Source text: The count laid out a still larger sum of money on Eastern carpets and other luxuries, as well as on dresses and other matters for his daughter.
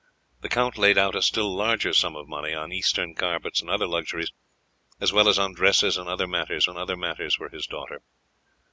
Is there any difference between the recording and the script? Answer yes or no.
yes